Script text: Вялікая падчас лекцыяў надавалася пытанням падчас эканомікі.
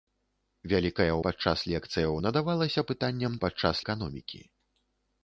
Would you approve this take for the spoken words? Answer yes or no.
yes